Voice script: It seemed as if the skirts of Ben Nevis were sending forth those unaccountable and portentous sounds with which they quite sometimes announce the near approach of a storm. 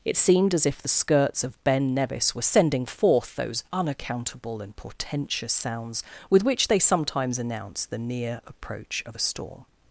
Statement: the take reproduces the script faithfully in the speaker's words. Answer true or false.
false